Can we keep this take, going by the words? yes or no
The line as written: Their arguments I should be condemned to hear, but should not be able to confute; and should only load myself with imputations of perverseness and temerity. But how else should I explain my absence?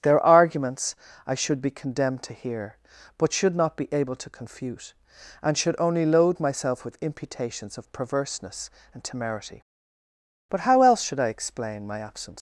yes